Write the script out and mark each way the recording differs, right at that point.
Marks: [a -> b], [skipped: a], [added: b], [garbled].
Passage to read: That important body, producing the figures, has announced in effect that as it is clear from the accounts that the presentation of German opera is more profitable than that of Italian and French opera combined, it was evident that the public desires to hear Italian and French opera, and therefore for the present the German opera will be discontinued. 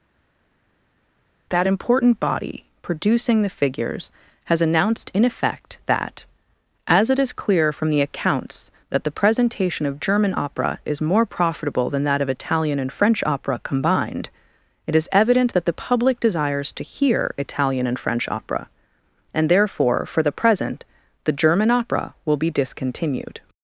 That important body, producing the figures, has announced in effect that as it is clear from the accounts that the presentation of German opera is more profitable than that of Italian and French opera combined, it [was -> is] evident that the public desires to hear Italian and French opera, and therefore for the present the German opera will be discontinued.